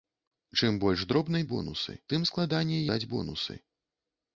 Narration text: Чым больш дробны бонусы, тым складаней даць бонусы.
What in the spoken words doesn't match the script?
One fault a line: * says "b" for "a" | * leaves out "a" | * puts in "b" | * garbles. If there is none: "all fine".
all fine